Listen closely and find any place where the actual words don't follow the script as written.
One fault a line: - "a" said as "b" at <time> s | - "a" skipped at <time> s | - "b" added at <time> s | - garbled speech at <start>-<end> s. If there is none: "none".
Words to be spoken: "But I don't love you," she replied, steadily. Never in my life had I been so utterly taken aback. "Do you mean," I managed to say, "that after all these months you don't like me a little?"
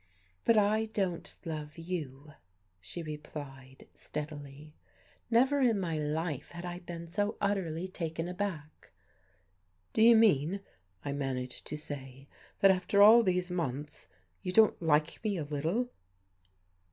none